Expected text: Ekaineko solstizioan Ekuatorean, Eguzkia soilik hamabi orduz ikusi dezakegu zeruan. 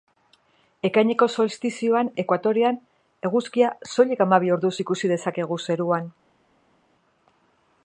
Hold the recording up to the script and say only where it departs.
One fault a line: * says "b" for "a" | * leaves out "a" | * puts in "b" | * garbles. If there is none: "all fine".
all fine